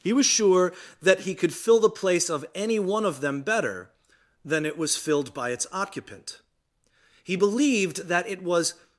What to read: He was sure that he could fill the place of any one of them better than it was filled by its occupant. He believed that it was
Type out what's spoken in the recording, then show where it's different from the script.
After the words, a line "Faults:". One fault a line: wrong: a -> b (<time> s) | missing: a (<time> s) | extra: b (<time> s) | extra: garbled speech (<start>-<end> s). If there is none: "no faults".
He was sure that he could fill the place of any one of them better than it was filled by its occupant. He believed that it was
Faults:
no faults